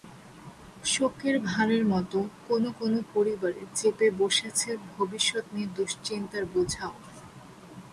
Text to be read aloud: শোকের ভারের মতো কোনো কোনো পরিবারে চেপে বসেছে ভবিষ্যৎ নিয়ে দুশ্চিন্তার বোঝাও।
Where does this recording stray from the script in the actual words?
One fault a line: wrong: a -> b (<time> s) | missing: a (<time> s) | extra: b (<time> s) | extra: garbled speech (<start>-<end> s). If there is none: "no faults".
no faults